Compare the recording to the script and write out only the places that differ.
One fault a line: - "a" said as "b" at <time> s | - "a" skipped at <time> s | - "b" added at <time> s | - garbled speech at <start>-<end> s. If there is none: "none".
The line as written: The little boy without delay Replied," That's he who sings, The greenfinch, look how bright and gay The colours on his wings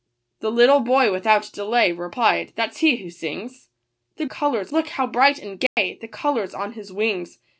- "greenfinch" said as "colours" at 4.2 s